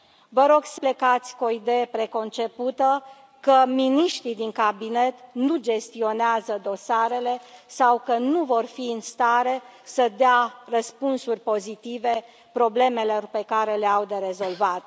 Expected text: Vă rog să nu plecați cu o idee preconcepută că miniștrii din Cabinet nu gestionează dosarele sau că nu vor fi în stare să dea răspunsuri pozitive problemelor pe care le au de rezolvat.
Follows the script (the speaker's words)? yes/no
no